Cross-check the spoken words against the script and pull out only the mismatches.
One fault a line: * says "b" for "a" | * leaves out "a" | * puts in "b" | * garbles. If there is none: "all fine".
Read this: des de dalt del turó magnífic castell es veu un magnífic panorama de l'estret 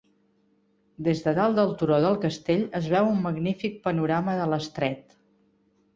* says "del" for "magnífic"